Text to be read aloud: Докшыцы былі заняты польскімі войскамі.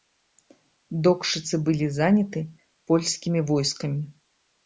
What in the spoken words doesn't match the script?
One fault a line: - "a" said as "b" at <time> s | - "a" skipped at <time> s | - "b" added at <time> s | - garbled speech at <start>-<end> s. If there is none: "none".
none